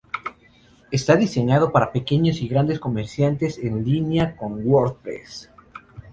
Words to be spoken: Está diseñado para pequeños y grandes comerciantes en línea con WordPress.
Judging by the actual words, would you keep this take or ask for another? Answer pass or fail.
pass